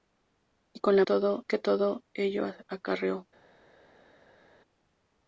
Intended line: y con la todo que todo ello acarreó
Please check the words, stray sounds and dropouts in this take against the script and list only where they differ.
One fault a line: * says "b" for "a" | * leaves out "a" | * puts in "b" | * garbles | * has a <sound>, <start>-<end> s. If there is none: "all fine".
all fine